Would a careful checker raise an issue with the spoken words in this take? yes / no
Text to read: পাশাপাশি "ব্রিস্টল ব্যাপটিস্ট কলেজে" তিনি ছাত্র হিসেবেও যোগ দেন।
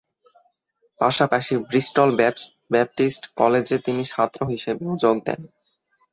no